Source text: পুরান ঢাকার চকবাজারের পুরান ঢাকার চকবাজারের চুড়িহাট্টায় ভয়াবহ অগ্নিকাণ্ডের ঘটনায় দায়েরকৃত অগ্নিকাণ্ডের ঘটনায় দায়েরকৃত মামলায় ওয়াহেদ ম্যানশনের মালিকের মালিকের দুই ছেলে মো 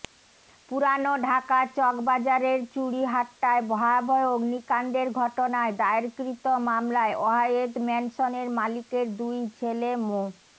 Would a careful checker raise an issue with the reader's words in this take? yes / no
yes